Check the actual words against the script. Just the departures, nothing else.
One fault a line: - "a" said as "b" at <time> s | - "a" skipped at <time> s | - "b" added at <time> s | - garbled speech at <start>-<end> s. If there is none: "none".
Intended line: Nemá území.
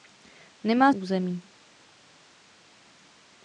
none